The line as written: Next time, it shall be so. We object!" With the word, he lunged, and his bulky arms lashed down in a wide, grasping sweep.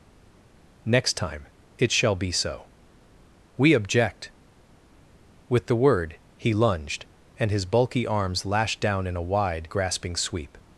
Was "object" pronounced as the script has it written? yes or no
yes